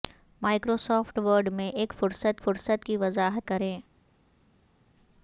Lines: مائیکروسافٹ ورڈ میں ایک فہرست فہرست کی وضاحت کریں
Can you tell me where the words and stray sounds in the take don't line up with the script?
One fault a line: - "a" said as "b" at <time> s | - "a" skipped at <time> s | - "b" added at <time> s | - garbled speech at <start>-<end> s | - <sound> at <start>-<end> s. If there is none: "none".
none